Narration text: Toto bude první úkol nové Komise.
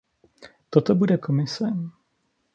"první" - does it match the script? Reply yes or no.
no